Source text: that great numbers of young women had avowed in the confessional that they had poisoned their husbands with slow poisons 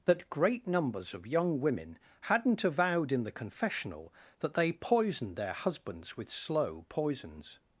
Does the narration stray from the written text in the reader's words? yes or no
yes